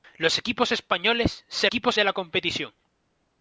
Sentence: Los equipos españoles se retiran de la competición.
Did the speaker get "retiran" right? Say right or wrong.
wrong